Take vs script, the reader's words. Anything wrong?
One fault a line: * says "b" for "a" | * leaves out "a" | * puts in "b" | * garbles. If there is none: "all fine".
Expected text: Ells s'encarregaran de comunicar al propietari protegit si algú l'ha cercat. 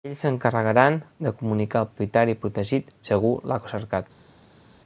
all fine